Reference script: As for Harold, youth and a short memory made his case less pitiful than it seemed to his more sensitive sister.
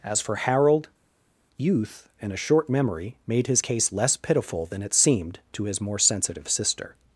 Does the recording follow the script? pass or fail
pass